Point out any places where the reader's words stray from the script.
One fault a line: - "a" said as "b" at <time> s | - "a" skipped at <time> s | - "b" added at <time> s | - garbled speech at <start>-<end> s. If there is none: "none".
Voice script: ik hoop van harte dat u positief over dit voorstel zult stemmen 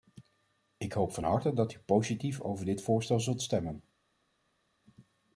none